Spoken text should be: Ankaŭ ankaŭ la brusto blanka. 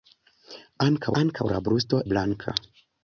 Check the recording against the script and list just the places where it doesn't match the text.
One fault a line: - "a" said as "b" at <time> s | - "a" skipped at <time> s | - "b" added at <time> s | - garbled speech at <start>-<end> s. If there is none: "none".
none